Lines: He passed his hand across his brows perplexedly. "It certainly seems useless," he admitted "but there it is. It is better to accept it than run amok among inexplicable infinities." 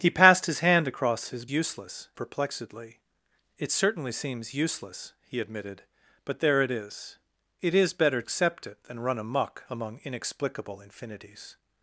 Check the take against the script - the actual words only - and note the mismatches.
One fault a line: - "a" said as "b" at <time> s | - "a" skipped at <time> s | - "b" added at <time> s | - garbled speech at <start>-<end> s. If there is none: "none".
- "brows" said as "useless" at 1.5 s
- "to" skipped at 8.2 s